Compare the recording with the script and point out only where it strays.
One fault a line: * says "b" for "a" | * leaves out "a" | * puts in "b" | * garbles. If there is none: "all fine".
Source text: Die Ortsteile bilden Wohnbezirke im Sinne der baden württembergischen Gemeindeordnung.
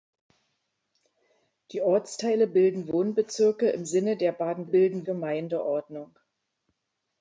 * says "bilden" for "württembergischen"